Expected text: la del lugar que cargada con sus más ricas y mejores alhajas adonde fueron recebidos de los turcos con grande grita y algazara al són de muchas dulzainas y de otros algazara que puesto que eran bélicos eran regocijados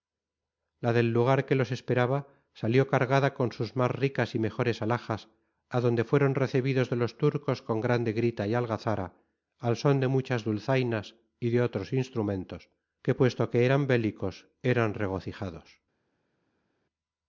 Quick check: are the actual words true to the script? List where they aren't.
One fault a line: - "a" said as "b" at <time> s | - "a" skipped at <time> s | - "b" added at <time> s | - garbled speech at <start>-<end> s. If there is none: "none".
- "los esperaba salió" added at 1.5 s
- "algazara" said as "instrumentos" at 11.9 s